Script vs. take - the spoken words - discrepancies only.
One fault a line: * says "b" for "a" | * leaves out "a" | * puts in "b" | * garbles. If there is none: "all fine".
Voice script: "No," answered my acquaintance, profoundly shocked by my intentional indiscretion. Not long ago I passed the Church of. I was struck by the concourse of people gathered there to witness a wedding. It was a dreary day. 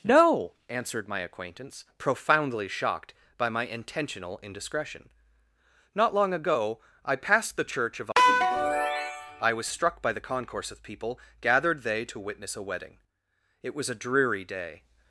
* says "they" for "there"